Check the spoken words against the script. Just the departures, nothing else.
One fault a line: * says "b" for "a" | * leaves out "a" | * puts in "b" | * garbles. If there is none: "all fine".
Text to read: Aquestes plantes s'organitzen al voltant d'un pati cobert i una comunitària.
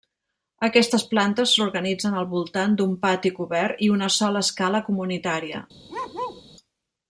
* puts in "sola escala"